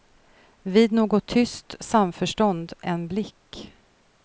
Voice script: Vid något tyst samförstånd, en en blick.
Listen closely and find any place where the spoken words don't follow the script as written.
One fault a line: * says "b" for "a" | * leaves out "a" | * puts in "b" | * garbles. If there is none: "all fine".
* leaves out "en"